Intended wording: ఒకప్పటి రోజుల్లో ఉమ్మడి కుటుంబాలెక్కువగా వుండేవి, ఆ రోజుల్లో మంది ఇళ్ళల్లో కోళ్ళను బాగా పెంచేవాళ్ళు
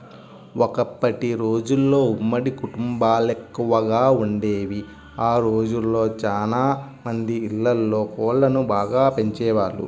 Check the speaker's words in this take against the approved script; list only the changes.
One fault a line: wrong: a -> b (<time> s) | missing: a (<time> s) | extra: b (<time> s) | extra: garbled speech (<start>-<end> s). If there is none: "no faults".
extra: చానా (6.2 s)